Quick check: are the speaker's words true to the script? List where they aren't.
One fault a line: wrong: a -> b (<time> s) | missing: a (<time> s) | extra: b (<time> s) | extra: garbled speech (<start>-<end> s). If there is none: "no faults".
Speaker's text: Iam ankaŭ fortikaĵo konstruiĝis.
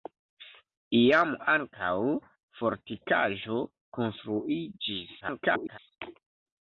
extra: garbled speech (5.2-5.8 s)